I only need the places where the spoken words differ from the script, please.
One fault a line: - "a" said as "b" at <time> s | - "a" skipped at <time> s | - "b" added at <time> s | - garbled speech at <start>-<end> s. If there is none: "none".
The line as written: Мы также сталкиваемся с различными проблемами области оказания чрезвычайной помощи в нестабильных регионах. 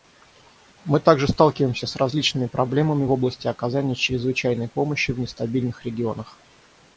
none